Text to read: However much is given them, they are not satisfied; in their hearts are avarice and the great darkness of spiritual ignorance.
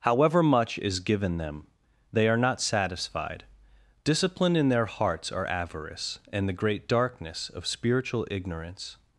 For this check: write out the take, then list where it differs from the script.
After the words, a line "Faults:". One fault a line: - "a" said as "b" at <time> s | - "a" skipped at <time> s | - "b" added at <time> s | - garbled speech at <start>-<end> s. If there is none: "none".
However much is given them, they are not satisfied; discipline in their hearts are avarice and the great darkness of spiritual ignorance.
Faults:
- "discipline" added at 4.0 s